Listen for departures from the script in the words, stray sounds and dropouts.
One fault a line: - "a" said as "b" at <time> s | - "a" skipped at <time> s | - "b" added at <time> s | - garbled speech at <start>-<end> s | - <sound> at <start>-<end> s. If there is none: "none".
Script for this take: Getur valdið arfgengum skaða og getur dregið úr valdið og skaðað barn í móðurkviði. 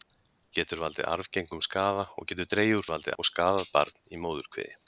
none